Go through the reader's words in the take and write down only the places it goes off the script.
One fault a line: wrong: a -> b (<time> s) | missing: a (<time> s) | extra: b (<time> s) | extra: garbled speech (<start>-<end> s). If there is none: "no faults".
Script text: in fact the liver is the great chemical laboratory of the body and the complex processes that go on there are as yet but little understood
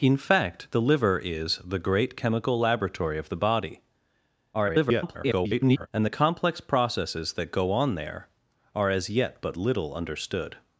extra: garbled speech (4.5-5.9 s)